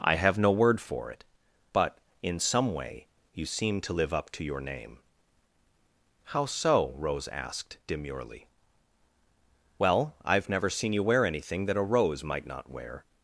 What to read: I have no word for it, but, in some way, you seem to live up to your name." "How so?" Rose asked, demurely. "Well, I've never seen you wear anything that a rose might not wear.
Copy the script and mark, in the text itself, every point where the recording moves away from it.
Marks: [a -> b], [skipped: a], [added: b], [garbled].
I have no word for it, but, in some way, you seem to live up to your name." "How so?" Rose asked, demurely. "Well, I've never seen you wear anything that a rose might not wear.